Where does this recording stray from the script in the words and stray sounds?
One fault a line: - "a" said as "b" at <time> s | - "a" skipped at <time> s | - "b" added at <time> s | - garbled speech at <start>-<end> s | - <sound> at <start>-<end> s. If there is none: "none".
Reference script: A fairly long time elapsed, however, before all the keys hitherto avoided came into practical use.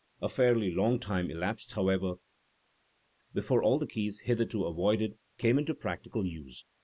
none